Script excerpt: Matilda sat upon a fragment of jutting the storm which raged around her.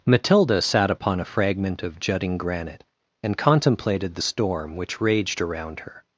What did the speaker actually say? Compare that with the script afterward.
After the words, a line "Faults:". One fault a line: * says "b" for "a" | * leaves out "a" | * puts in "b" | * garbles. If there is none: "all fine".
Matilda sat upon a fragment of jutting granite, and contemplated the storm which raged around her.
Faults:
* puts in "granite and contemplated"